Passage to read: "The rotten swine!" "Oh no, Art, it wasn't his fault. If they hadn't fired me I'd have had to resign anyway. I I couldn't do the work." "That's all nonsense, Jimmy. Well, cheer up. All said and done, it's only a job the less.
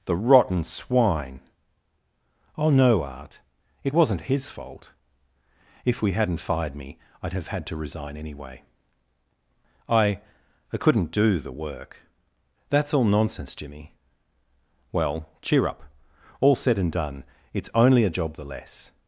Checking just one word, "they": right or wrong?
wrong